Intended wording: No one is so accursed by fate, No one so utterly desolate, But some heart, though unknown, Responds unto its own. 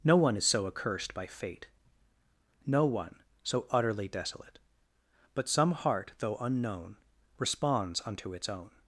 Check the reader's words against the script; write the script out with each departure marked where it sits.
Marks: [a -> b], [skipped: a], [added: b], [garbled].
No one is so accursed by fate, No one so utterly desolate, But some heart, though unknown, Responds unto its own.